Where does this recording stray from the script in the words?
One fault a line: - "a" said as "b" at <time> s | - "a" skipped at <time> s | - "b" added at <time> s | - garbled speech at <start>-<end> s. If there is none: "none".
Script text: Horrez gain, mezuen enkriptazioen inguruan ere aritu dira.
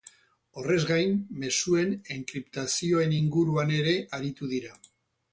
none